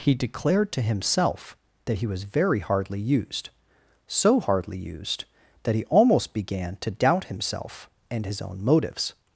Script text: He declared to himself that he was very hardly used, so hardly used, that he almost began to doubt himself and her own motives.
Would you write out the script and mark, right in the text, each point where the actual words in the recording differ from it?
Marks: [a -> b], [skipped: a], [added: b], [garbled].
He declared to himself that he was very hardly used, so hardly used, that he almost began to doubt himself and [her -> his] own motives.